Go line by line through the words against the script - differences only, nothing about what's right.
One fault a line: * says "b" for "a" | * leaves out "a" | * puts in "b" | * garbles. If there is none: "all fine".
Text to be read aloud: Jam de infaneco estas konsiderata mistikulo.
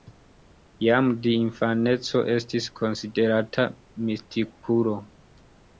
* says "estis" for "estas"